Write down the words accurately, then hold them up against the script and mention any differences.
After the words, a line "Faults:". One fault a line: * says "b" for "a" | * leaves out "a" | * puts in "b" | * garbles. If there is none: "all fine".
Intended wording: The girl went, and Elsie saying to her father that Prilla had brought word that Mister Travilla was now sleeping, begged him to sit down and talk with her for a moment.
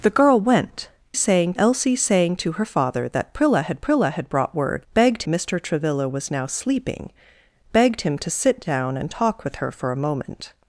The girl went, saying Elsie saying to her father that Prilla had Prilla had brought word begged Mister Travilla was now sleeping, begged him to sit down and talk with her for a moment.
Faults:
* says "saying" for "and"
* puts in "Prilla had"
* says "begged" for "that"